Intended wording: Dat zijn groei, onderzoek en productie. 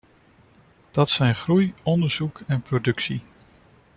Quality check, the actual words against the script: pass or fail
pass